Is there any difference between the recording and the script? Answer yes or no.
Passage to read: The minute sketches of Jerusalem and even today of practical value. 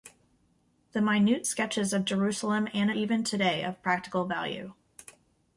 no